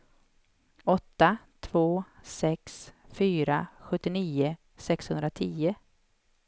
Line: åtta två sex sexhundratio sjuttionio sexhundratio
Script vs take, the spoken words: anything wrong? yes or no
yes